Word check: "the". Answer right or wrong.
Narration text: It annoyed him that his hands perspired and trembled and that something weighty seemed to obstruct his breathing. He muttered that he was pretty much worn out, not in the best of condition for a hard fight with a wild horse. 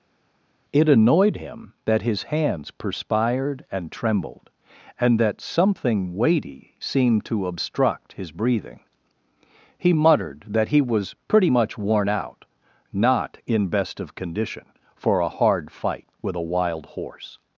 wrong